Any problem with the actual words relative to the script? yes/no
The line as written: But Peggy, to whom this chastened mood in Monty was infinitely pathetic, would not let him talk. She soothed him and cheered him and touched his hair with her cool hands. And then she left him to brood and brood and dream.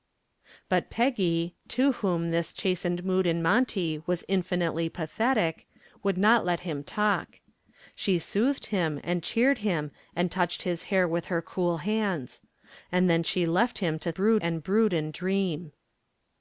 no